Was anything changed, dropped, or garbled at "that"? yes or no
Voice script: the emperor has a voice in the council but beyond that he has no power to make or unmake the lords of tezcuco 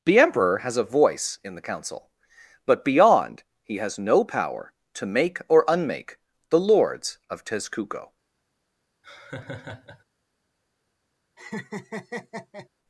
yes